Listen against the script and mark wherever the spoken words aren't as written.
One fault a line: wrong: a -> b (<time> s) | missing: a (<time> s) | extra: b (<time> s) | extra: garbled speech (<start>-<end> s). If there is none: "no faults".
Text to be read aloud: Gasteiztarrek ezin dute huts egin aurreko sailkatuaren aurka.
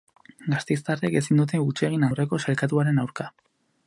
no faults